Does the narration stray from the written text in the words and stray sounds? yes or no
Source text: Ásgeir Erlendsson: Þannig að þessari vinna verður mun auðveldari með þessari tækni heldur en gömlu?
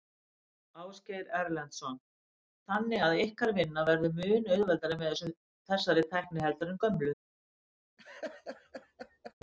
yes